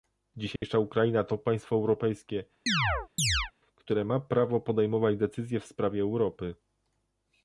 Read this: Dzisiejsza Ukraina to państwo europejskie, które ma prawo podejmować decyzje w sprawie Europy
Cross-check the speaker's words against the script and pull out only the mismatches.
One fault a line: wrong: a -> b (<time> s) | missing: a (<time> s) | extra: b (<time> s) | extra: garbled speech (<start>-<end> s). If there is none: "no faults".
no faults